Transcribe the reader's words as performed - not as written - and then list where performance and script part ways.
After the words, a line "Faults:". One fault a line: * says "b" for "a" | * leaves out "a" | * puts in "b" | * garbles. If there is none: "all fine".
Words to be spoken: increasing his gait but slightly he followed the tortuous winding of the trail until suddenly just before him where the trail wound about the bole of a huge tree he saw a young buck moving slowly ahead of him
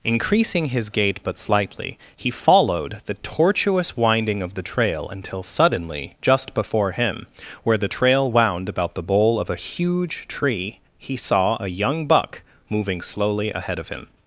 increasing his gait but slightly he followed the tortuous winding of the trail until suddenly just before him where the trail wound about the bole of a huge tree he saw a young buck moving slowly ahead of him
Faults:
all fine